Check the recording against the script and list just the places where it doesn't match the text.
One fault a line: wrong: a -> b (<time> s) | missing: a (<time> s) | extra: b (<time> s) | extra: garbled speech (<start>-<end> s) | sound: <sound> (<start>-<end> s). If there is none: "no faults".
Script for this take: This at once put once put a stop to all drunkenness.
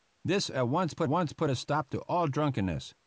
no faults